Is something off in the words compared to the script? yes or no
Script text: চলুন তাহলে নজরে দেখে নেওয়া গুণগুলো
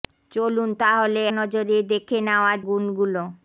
no